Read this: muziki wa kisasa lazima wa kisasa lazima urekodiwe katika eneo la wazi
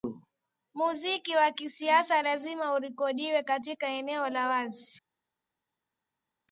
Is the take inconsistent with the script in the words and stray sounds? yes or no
yes